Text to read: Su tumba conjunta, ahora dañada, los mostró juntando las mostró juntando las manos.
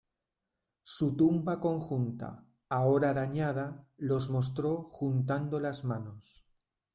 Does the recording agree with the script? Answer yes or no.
no